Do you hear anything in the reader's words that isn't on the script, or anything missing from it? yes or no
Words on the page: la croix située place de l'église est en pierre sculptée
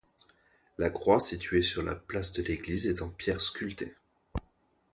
yes